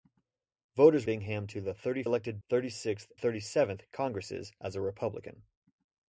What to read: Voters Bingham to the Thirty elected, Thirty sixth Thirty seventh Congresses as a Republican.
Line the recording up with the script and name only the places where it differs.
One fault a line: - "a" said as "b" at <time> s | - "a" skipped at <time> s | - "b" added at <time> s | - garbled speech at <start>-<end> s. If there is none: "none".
none